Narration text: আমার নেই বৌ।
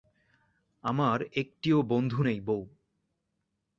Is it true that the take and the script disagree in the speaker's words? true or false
true